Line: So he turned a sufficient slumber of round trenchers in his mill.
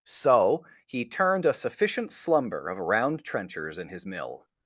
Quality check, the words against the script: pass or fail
pass